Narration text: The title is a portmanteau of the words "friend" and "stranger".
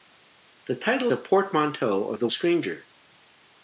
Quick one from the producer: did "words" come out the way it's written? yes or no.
no